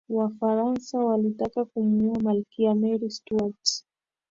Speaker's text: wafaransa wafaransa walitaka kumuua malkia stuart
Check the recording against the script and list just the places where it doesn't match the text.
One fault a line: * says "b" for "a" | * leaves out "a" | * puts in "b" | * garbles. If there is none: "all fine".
* leaves out "wafaransa"
* puts in "mary"